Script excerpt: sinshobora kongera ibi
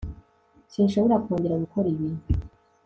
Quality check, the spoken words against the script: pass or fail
fail